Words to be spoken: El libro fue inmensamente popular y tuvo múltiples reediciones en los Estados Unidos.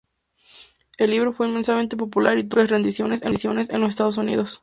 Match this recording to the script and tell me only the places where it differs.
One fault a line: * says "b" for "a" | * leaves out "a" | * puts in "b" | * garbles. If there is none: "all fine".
all fine